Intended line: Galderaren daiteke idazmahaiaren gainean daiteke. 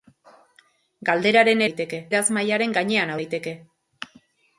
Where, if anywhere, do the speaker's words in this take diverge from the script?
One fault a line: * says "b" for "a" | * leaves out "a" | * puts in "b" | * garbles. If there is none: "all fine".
all fine